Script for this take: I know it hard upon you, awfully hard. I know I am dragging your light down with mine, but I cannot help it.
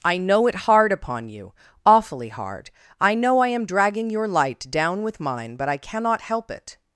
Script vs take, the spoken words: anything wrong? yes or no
no